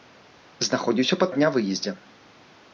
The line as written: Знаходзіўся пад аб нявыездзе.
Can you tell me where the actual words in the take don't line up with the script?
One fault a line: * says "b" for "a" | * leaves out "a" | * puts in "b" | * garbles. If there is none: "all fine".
all fine